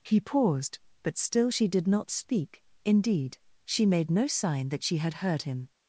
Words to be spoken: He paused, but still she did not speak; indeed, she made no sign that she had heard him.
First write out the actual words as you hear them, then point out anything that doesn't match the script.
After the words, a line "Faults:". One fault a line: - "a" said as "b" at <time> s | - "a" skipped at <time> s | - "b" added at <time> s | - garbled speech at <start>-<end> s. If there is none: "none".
He paused, but still she did not speak; indeed, she made no sign that she had heard him.
Faults:
none